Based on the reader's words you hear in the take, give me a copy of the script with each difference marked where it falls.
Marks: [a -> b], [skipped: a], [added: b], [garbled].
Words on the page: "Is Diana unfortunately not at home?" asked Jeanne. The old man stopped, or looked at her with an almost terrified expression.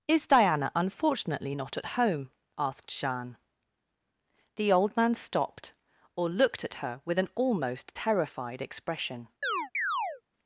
"Is Diana unfortunately not at home?" asked Jeanne. The old man stopped, or looked at her with an almost terrified expression.